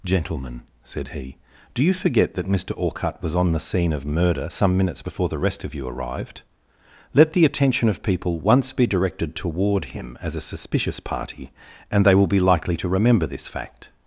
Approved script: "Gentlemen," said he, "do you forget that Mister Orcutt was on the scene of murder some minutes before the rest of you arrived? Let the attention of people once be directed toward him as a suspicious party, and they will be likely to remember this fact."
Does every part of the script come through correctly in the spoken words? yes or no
yes